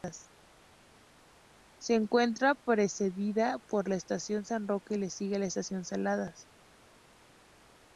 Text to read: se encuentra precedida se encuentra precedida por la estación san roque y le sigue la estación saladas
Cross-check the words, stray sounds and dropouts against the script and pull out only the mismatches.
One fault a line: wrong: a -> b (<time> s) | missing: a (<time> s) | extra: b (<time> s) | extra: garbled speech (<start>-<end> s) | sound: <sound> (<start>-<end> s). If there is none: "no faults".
missing: se encuentra precedida (3.6 s)